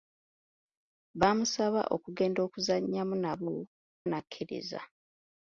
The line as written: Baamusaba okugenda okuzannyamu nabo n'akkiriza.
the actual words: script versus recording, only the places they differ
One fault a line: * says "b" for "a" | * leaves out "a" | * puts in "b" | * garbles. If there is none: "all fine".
all fine